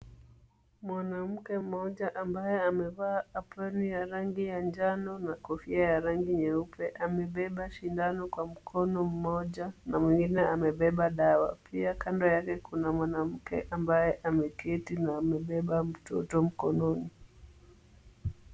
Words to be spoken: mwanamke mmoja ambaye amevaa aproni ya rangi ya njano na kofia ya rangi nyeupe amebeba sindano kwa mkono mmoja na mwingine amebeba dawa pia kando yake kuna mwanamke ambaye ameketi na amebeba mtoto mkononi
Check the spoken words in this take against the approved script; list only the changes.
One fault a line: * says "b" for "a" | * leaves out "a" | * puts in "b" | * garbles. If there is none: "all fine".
all fine